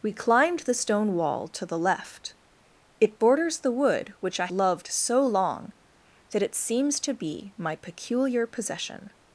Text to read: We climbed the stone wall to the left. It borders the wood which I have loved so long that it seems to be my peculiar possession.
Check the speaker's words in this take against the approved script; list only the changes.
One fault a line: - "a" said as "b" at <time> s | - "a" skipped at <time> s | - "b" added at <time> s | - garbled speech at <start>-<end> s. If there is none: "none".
- "have" skipped at 4.5 s